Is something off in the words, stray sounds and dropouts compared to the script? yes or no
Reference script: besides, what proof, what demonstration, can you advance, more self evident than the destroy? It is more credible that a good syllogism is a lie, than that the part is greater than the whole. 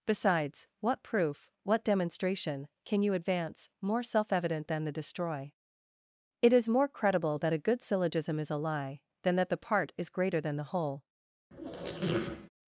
yes